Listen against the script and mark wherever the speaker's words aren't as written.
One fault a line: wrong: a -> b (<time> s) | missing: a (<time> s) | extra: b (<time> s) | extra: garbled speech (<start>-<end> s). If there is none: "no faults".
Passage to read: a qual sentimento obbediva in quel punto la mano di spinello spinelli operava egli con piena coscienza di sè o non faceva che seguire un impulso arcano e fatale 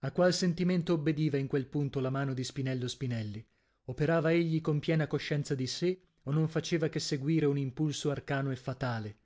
no faults